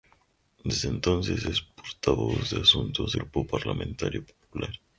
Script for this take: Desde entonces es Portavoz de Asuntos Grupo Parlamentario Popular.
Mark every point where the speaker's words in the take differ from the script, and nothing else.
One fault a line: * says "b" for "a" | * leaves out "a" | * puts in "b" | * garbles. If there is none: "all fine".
all fine